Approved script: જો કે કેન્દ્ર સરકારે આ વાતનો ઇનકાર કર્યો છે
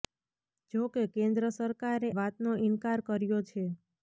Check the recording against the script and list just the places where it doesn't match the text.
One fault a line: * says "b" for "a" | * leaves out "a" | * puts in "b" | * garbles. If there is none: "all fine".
* leaves out "આ"